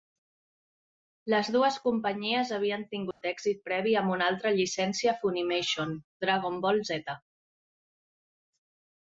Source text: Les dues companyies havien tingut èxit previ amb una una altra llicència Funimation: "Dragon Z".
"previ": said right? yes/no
yes